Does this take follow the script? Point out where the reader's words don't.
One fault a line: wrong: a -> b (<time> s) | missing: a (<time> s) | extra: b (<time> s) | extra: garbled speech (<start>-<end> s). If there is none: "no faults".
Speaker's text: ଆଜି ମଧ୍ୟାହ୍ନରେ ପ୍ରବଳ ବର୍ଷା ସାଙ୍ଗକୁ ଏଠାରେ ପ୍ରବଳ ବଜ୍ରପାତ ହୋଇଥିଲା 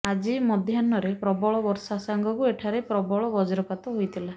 no faults